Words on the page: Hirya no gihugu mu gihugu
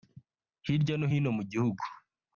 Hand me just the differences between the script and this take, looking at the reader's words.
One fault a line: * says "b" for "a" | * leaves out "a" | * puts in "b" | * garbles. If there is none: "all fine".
* says "hino" for "gihugu"